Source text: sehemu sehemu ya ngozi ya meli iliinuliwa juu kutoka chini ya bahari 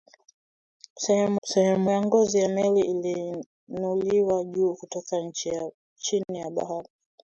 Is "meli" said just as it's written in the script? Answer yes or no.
yes